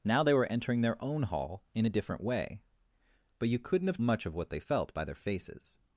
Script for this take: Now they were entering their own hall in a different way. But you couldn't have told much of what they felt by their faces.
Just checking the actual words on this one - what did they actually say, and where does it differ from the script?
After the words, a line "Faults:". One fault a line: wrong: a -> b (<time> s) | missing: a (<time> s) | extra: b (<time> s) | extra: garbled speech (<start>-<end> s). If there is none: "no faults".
Now they were entering their own hall in a different way. But you couldn't have much of what they felt by their faces.
Faults:
missing: told (4.0 s)